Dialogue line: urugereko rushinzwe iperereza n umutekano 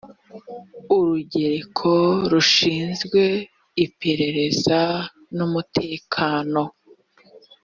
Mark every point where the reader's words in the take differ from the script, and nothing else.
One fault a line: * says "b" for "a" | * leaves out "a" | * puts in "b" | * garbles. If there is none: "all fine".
all fine